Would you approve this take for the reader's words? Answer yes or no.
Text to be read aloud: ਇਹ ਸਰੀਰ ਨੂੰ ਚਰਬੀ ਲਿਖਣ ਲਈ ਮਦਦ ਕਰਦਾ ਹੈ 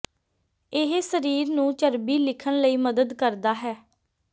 yes